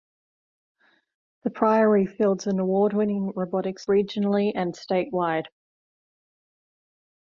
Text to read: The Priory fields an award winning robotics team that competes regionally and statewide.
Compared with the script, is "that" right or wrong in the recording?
wrong